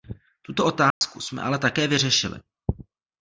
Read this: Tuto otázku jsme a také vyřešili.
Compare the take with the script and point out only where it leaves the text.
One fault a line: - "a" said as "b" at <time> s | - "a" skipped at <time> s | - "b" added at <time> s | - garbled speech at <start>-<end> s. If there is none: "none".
- "a" said as "ale" at 1.4 s